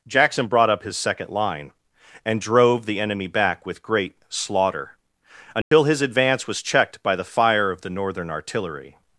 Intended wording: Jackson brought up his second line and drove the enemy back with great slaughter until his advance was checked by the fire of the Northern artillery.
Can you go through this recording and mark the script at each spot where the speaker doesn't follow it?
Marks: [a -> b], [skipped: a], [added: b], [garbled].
Jackson brought up his second line and drove the enemy back with great slaughter until his advance was checked by the fire of the Northern artillery.